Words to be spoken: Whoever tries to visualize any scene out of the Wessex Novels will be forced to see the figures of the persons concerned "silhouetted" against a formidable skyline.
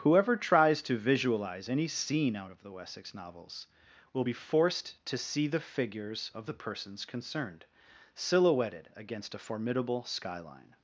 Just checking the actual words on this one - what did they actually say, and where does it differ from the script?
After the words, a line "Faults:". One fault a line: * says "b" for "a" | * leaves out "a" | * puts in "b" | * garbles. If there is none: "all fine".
Whoever tries to visualize any scene out of the Wessex Novels will be forced to see the figures of the persons concerned "silhouetted" against a formidable skyline.
Faults:
all fine